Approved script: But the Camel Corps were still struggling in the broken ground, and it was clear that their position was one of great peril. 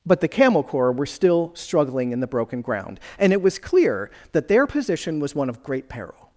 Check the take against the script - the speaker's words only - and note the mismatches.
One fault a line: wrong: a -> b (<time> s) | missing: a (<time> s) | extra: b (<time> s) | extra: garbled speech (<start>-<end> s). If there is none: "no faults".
no faults